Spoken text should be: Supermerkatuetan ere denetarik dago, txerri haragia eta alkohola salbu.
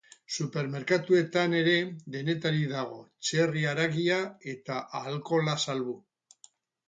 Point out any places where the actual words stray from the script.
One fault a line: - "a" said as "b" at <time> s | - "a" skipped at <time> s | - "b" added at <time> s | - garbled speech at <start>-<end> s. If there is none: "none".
none